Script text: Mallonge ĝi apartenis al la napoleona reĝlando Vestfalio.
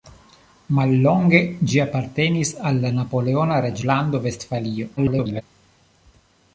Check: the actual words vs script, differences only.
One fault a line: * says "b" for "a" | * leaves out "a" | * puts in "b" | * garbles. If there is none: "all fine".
* garbles